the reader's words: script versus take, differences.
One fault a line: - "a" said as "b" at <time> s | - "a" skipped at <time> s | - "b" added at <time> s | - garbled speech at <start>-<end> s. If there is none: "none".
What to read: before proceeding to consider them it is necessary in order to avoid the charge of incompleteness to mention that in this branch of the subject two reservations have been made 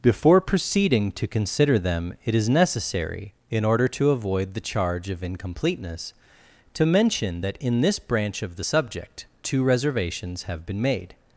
none